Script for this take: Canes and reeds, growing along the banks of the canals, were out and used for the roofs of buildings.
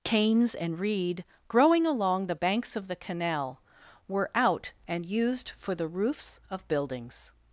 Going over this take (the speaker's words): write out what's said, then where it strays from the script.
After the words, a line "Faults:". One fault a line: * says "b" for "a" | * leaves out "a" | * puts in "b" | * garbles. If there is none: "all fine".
Canes and reed, growing along the banks of the canal, were out and used for the roofs of buildings.
Faults:
* says "reed" for "reeds"
* says "canal" for "canals"